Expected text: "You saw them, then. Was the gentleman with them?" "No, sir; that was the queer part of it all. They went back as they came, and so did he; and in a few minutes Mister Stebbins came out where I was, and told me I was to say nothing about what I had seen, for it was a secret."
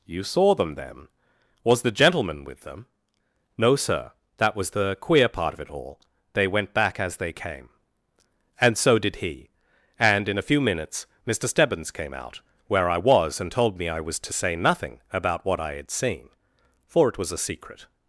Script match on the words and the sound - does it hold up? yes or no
yes